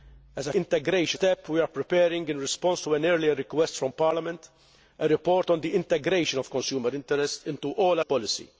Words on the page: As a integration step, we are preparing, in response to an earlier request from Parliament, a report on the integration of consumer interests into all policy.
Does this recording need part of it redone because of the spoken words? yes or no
no